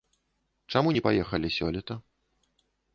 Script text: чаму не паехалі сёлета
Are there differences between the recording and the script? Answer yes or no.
no